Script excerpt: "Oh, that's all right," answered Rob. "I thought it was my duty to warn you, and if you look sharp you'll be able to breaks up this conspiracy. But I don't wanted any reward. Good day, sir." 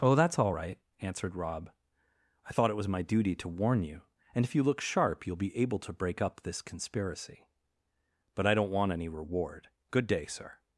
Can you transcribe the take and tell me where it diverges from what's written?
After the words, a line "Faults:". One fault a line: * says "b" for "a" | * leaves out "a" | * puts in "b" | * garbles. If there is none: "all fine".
"Oh, that's all right," answered Rob. "I thought it was my duty to warn you, and if you look sharp you'll be able to break up this conspiracy. But I don't want any reward. Good day, sir."
Faults:
* says "break" for "breaks"
* says "want" for "wanted"